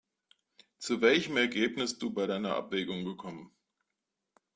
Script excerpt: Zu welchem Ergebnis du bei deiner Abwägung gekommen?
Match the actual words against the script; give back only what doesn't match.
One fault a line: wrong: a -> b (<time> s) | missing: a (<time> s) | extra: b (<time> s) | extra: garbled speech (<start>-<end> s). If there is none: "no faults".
no faults